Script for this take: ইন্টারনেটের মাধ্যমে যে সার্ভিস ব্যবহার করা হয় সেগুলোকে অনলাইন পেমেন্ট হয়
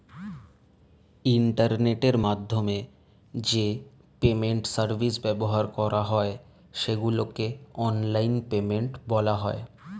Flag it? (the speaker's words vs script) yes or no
yes